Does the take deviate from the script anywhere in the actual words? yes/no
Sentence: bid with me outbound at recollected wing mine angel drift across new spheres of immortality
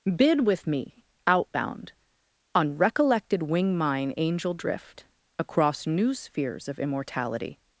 yes